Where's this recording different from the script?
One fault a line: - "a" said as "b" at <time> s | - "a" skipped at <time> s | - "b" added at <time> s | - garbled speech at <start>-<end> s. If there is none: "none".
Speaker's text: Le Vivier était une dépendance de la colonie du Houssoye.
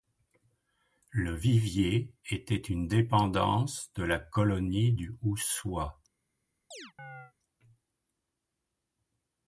none